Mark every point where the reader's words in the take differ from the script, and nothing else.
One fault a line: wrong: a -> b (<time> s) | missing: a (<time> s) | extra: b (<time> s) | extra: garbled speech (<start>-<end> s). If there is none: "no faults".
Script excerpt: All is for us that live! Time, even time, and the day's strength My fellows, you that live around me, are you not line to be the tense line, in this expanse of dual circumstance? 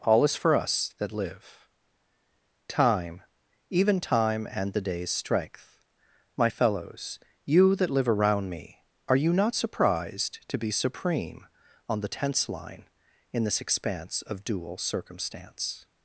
wrong: line -> surprised (9.5 s)
extra: supreme on (10.7 s)